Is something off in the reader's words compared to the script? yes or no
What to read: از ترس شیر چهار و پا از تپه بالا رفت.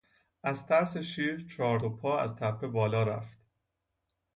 no